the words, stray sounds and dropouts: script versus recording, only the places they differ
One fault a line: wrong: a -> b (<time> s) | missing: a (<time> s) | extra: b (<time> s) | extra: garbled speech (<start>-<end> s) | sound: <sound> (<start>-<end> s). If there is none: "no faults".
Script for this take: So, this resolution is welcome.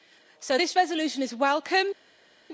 no faults